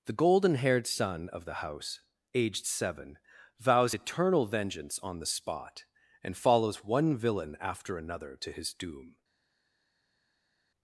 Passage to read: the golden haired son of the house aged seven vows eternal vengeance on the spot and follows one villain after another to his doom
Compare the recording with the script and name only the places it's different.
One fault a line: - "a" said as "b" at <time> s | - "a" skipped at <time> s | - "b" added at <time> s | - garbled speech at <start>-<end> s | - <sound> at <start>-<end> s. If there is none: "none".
none